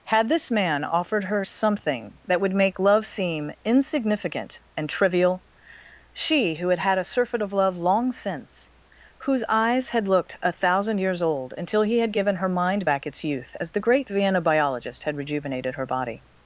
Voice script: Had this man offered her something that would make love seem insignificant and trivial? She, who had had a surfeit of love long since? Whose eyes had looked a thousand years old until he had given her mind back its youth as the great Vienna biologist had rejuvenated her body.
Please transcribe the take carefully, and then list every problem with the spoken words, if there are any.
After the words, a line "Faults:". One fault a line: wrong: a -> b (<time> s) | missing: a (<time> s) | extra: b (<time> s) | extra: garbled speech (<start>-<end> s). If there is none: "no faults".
Had this man offered her something that would make love seem insignificant and trivial? She, who had had a surfeit of love long since? Whose eyes had looked a thousand years old until he had given her mind back its youth as the great Vienna biologist had rejuvenated her body.
Faults:
no faults